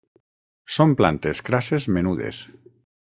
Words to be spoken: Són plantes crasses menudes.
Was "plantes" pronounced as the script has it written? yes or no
yes